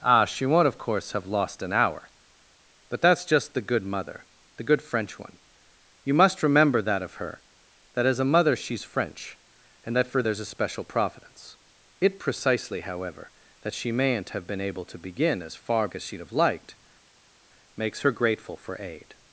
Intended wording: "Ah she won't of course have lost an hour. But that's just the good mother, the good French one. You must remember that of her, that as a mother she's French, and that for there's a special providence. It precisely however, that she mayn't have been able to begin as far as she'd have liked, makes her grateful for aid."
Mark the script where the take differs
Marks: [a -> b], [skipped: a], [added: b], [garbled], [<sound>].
"Ah she won't of course have lost an hour. But that's just the good mother, the good French one. You must remember that of her, that as a mother she's French, and that for there's a special providence. It precisely however, that she mayn't have been able to begin as far as she'd have liked, makes her grateful for aid."